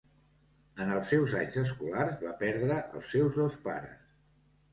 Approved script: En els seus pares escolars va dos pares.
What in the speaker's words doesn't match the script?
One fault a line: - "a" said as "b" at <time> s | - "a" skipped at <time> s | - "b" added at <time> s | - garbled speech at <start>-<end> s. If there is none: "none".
- "pares" said as "anys" at 1.4 s
- "perdre els seus" added at 2.5 s